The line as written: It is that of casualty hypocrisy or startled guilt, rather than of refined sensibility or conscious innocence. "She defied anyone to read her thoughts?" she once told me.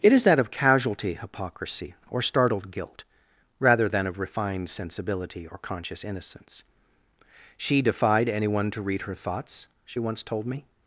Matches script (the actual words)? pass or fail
pass